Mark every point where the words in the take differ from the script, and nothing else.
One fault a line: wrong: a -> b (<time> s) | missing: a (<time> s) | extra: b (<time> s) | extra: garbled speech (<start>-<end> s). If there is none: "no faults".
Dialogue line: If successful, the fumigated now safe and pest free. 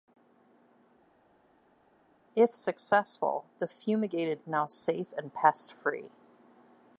no faults